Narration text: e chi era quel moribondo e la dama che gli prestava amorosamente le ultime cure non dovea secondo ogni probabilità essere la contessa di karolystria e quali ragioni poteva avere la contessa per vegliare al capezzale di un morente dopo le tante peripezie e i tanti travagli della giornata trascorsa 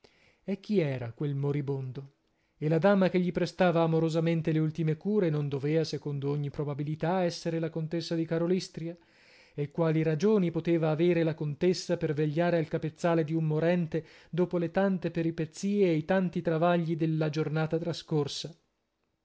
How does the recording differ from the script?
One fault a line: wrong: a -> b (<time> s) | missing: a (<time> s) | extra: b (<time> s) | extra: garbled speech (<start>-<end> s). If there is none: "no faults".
no faults